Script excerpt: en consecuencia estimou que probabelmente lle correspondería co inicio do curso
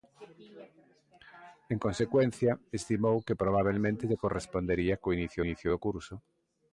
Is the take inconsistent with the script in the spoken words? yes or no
yes